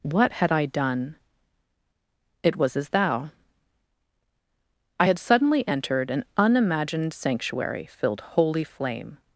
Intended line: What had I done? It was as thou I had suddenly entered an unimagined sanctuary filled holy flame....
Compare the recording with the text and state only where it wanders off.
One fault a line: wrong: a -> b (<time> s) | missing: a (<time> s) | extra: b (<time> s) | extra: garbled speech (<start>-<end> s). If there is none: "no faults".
no faults